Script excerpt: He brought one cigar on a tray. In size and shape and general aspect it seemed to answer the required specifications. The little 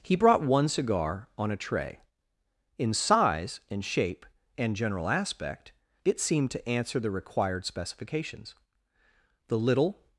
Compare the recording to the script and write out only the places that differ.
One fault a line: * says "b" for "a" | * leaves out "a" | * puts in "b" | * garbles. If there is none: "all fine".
all fine